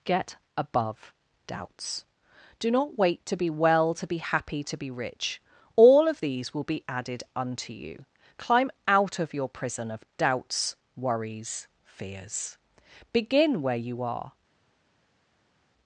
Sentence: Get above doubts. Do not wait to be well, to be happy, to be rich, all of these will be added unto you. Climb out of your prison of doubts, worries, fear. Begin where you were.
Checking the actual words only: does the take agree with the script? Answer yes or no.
no